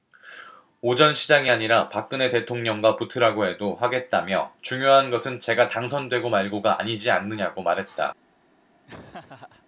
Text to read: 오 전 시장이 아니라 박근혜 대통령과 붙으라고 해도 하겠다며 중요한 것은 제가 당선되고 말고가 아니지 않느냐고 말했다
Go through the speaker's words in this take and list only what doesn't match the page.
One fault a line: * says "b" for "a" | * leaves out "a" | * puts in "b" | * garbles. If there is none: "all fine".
all fine